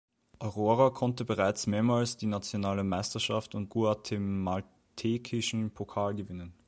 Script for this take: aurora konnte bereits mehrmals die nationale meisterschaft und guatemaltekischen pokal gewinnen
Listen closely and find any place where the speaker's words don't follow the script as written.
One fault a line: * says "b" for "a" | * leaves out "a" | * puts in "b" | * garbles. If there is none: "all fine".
all fine